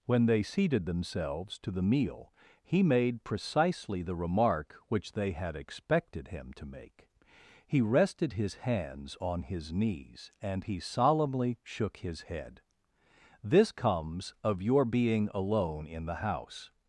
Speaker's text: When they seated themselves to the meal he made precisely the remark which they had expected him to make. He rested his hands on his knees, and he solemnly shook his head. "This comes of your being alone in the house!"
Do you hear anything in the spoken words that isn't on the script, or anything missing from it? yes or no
no